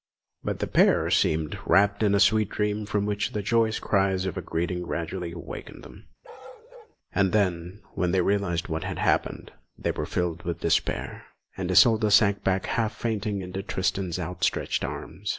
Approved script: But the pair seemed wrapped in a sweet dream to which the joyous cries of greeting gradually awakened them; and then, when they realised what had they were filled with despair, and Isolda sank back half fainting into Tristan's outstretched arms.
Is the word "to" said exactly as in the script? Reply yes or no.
no